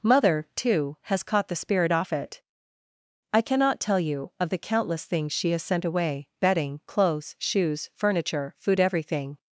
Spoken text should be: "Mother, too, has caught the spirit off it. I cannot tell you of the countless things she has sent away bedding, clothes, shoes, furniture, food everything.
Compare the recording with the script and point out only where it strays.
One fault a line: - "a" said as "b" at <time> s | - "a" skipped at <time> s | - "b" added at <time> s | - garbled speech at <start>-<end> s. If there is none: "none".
none